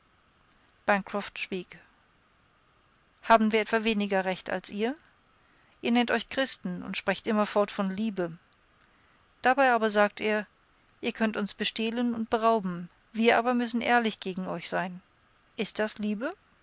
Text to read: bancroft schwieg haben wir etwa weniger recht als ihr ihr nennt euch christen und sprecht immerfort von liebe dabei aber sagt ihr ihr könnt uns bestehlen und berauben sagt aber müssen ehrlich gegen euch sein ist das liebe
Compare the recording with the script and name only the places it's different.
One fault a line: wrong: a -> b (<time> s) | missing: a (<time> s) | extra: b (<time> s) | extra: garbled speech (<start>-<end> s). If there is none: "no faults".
wrong: sagt -> wir (13.1 s)